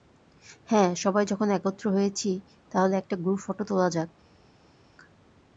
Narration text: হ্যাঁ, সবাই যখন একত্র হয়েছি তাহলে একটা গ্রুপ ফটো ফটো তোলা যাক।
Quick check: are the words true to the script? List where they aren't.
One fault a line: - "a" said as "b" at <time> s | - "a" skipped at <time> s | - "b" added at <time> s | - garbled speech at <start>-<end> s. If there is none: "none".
- "ফটো" skipped at 3.6 s